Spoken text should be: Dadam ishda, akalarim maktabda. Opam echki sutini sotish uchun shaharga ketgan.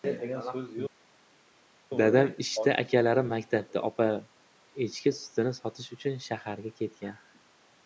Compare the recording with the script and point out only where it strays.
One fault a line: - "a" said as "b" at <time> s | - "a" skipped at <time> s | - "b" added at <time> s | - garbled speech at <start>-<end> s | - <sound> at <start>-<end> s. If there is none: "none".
none